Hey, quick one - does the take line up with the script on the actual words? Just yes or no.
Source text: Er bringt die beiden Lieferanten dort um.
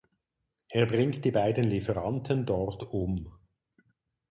yes